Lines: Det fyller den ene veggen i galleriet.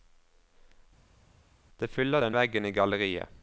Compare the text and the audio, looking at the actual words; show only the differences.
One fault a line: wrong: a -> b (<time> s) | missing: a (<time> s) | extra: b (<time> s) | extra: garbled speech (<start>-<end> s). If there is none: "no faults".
missing: ene (2.4 s)